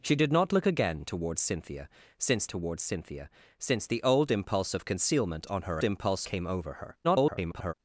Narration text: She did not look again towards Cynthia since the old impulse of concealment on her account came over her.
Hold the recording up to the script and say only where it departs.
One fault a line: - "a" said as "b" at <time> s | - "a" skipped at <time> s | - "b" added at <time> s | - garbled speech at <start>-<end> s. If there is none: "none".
- "towards Cynthia since" added at 2.5 s
- "account" said as "impulse" at 5.8 s
- garbled speech at 7.0-7.7 s